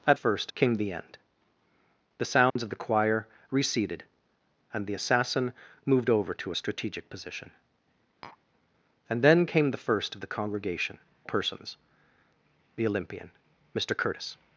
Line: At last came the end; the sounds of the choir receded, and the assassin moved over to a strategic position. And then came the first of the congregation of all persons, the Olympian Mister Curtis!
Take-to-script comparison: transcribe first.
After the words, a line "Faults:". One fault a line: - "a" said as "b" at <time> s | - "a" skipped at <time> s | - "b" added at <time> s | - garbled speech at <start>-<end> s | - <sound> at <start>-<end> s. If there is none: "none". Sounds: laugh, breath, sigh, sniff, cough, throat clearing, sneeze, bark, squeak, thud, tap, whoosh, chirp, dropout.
At first came the end; the sounds of the choir receded, and the assassin moved over to a strategic position. And then came the first of the congregation persons, the Olympian Mister Curtis!
Faults:
- "last" said as "first" at 0.1 s
- dropout at 2.5-2.6 s
- tap at 8.2-8.4 s
- "of all" skipped at 11.0 s